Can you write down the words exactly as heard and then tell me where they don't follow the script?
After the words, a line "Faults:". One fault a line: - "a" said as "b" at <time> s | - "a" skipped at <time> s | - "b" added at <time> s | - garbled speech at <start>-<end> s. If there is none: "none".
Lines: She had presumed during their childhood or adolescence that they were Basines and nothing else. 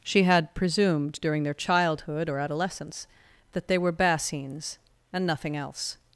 She had presumed during their childhood or adolescence that they were Basines and nothing else.
Faults:
none